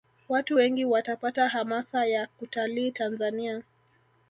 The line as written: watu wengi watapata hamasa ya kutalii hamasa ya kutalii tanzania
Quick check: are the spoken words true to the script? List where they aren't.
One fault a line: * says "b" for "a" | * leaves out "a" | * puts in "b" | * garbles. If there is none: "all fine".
* leaves out "hamasa ya kutalii"